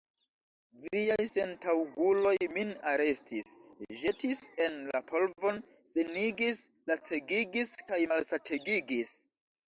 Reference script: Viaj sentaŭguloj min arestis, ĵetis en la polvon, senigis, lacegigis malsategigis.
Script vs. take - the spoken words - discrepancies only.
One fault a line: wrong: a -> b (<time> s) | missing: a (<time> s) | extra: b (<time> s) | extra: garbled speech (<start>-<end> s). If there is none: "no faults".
extra: kaj (7.9 s)